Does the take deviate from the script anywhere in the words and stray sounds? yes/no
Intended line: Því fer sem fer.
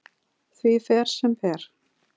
no